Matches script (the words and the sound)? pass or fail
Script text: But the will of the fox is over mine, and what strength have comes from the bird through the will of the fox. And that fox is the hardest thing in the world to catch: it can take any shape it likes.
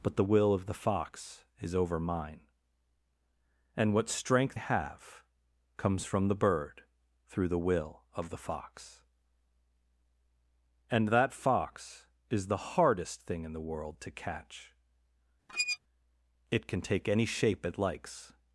fail